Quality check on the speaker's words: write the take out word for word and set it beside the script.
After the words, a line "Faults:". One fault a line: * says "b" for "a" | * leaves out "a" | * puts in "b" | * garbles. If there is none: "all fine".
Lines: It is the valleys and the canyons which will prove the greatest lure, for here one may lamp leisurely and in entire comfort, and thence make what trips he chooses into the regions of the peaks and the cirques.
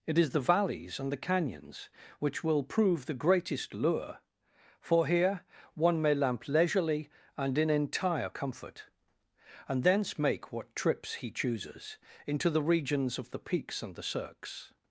It is the valleys and the canyons which will prove the greatest lure, for here one may lamp leisurely and in entire comfort, and thence make what trips he chooses into the regions of the peaks and the cirques.
Faults:
all fine